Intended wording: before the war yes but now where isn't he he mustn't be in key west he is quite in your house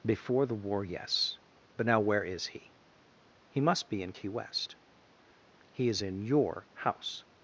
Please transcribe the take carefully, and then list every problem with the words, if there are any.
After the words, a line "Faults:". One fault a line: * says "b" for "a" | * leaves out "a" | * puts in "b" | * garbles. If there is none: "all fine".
before the war yes but now where is he he must be in key west he is in your house
Faults:
* says "is" for "isn't"
* says "must" for "mustn't"
* leaves out "quite"